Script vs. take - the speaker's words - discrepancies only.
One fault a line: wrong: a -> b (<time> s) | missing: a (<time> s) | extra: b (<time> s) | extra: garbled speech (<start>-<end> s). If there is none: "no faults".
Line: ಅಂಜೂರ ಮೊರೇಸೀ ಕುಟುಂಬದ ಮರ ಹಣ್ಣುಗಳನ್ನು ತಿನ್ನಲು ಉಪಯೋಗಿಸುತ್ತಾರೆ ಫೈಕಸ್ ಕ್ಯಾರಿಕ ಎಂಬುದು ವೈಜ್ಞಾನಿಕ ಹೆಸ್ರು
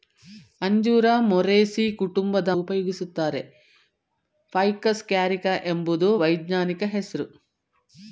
missing: ಮರ ಹಣ್ಣುಗಳನ್ನು ತಿನ್ನಲು (2.5 s)